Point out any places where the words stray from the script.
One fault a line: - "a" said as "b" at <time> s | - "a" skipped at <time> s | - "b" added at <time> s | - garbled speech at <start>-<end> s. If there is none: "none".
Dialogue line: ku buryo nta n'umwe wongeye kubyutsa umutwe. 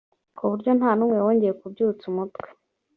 none